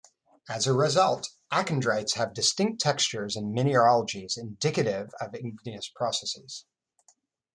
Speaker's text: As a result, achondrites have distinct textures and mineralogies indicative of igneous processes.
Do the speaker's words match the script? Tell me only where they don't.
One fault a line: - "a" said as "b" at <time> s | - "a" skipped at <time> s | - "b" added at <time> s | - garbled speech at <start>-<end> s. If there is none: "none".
none